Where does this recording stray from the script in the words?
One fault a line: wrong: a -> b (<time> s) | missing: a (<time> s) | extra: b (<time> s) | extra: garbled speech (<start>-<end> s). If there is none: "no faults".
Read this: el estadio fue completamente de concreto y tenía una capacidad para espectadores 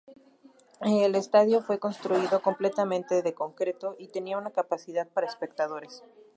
extra: construido (1.8 s)